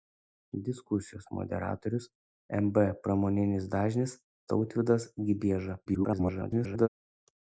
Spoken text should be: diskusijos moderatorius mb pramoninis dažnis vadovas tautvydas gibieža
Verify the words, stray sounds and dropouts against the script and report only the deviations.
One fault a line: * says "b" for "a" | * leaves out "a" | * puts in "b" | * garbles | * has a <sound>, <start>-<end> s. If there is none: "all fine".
* leaves out "vadovas"
* garbles